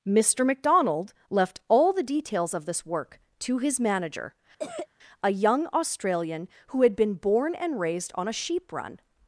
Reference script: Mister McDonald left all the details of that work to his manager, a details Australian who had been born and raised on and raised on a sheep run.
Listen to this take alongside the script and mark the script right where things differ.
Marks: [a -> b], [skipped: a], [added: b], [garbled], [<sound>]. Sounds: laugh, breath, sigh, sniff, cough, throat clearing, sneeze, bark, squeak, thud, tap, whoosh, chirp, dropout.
Mister McDonald left all the details of [that -> this] work to his manager, [cough] a [details -> young] Australian who had been born and raised on [skipped: and raised on] a sheep run.